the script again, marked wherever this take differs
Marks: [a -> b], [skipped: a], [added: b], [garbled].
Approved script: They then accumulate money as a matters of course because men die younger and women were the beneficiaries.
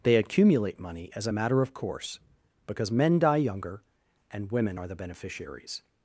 They [skipped: then] accumulate money as a [matters -> matter] of course because men die younger and women [were -> are] the beneficiaries.